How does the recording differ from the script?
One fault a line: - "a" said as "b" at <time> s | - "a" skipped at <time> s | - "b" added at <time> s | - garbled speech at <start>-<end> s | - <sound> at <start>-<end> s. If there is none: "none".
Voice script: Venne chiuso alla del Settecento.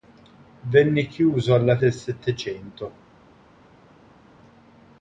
none